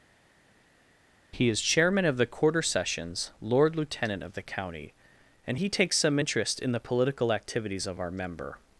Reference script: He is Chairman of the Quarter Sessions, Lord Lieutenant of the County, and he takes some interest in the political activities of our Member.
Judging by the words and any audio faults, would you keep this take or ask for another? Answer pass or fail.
pass